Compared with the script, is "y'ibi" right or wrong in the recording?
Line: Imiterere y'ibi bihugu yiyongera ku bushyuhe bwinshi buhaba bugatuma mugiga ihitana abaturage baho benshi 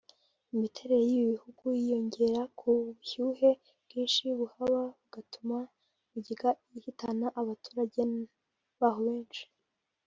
right